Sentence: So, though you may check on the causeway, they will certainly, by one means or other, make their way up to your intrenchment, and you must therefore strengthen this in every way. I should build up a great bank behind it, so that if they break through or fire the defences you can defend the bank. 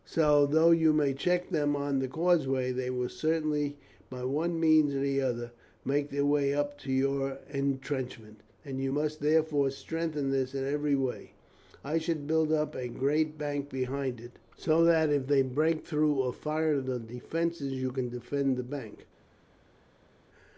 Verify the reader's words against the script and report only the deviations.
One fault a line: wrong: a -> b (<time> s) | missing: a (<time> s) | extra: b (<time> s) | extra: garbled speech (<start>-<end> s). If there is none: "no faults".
extra: them (1.5 s)